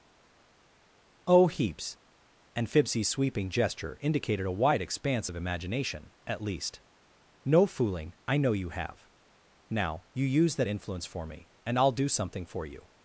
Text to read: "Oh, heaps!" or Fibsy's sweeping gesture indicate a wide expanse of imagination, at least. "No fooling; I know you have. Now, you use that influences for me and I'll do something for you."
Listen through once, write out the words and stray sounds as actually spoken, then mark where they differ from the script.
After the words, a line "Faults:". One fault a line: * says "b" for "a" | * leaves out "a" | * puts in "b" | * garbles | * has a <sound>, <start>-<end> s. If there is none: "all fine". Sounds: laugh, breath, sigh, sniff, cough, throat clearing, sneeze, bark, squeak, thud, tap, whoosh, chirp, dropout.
"Oh, heaps!" and Fibsy's sweeping gesture indicated a wide expanse of imagination, at least. "No fooling; I know you have. Now, you use that influence for me and I'll do something for you."
Faults:
* says "and" for "or"
* says "indicated" for "indicate"
* says "influence" for "influences"